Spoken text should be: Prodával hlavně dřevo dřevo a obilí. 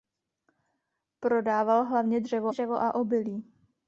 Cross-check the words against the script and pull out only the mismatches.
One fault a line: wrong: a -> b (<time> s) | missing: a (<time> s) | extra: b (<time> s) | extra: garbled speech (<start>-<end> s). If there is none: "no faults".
no faults